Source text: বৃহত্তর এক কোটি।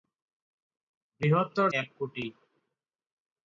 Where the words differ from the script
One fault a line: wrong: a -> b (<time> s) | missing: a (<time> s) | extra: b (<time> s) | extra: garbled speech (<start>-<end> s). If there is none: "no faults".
no faults